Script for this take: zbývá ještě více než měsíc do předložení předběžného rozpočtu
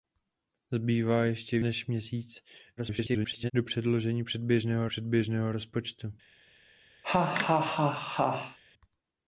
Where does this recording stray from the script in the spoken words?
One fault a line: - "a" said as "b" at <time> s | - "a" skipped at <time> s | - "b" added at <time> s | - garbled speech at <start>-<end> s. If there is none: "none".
- "více" skipped at 1.6 s
- garbled speech at 2.8-3.5 s
- "předběžného" added at 4.9 s